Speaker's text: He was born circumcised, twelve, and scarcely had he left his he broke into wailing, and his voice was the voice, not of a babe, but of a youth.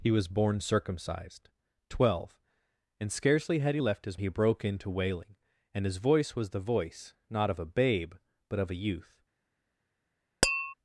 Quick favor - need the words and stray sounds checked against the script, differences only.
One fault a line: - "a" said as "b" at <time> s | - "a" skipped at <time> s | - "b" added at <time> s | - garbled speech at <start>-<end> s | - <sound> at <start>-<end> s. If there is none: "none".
- tap at 10.4-10.7 s